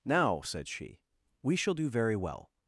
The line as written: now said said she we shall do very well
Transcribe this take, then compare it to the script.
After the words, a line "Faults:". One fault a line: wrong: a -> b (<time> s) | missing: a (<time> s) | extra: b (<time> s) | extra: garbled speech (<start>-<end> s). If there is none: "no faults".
now said she we shall do very well
Faults:
missing: said (0.7 s)